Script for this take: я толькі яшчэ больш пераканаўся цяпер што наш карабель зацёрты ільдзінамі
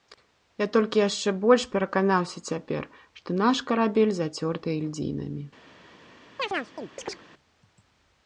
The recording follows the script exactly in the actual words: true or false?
true